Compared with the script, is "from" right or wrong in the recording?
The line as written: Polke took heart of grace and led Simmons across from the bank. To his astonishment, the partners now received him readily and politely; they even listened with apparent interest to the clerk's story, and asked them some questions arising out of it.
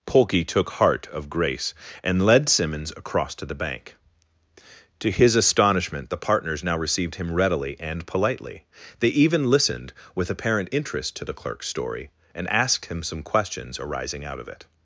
wrong